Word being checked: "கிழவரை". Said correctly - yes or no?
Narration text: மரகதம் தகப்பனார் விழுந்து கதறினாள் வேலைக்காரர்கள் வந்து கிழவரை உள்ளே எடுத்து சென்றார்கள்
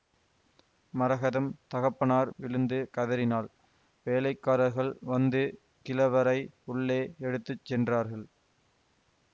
yes